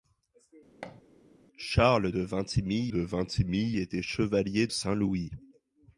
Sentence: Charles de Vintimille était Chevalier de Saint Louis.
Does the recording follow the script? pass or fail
fail